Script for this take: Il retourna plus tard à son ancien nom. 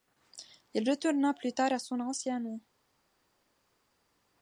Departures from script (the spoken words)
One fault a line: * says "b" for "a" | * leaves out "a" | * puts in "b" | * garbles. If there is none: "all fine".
all fine